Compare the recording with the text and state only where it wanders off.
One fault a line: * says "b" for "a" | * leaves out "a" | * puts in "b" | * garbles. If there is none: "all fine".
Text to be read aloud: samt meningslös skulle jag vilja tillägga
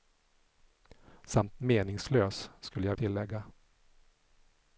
* leaves out "vilja"